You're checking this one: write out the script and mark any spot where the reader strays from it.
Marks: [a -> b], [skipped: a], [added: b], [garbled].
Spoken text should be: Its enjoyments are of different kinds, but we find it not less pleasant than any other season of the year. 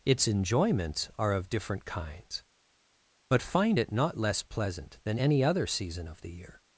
Its enjoyments are of different kinds, but [skipped: we] find it not less pleasant than any other season of the year.